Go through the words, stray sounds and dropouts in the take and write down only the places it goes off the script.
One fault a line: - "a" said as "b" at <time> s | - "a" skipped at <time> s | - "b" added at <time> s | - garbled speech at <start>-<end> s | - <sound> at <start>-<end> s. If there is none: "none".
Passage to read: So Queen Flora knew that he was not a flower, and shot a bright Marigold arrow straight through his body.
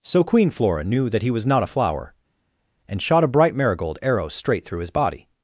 none